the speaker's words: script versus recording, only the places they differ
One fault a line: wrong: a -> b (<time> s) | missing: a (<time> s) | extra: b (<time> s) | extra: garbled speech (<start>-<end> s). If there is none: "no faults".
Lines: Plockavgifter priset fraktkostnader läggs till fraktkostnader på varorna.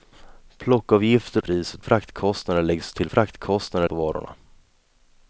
no faults